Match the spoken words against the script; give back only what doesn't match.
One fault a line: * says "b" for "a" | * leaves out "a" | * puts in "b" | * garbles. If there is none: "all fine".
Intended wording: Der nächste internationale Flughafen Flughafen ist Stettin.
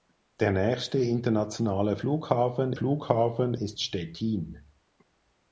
all fine